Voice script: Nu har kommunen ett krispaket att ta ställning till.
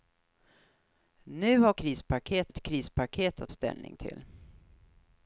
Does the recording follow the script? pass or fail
fail